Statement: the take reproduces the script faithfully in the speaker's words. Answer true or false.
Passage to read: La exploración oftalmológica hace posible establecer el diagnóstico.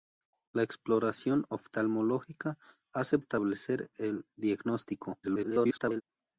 false